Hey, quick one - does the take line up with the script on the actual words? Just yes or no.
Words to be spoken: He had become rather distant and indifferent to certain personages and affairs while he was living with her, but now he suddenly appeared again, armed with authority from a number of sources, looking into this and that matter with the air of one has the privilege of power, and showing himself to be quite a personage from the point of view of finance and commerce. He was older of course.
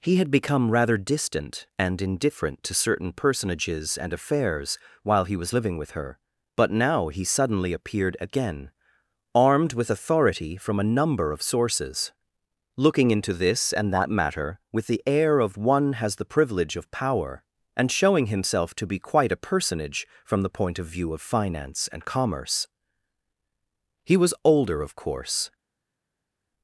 yes